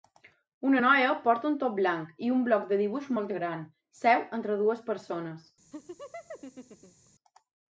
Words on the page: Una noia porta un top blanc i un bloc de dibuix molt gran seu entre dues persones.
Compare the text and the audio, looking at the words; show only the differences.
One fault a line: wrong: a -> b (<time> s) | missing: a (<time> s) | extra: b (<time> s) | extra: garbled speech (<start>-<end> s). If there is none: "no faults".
no faults